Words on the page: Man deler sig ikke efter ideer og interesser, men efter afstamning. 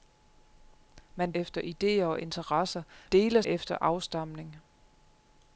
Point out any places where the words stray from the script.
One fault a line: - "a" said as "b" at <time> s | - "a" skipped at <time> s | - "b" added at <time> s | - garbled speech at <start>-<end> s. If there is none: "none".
- "deler sig ikke" skipped at 1.3 s
- "men" said as "deler" at 3.1 s